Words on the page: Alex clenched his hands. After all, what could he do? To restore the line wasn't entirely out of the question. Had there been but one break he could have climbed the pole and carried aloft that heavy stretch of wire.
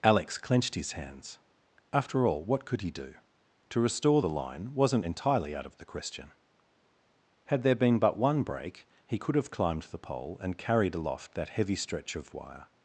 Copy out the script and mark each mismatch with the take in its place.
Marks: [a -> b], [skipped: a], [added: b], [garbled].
Alex clenched his hands. After all, what could he do? To restore the line wasn't entirely out of the question. Had there been but one break he could have climbed the pole and carried aloft that heavy stretch of wire.